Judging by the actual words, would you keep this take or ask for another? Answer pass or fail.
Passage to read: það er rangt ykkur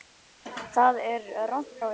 pass